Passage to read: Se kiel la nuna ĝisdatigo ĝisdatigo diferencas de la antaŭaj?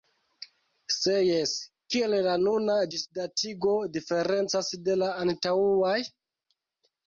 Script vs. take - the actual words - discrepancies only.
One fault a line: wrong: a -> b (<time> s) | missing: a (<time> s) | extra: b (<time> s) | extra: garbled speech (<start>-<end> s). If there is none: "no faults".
extra: jes (1.2 s)
missing: ĝisdatigo (3.8 s)